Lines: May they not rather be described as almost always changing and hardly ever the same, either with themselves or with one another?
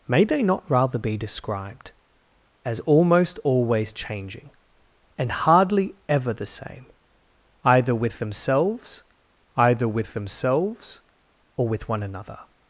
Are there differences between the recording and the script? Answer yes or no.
yes